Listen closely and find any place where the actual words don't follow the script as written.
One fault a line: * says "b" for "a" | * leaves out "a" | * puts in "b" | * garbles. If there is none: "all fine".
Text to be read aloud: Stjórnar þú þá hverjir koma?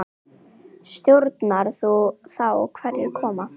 all fine